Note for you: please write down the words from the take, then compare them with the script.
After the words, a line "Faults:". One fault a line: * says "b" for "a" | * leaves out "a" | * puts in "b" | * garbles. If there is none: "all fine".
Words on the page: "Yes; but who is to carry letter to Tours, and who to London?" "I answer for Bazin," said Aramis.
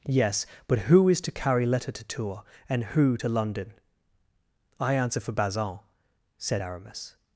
"Yes; but who is to carry letter to Tours, and who to London?" "I answer for Bazin," said Aramis.
Faults:
all fine